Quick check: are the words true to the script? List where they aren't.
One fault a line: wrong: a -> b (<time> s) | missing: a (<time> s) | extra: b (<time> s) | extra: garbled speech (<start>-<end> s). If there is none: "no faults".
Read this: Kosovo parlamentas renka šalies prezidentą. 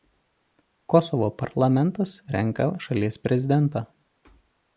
no faults